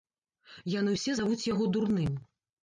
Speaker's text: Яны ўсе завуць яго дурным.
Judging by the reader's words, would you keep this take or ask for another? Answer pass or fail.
pass